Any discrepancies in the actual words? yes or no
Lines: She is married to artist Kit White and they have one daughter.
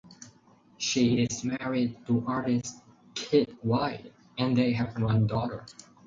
no